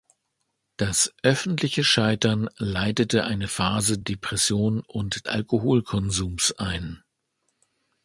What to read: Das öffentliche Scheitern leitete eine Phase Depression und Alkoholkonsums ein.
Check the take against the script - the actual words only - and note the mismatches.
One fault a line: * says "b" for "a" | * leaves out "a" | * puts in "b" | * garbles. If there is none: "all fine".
all fine